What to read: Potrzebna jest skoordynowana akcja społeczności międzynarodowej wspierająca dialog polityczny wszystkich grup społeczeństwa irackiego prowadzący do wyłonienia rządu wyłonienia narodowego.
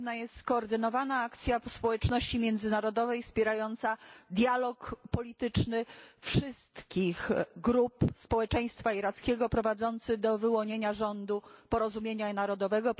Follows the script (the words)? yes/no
no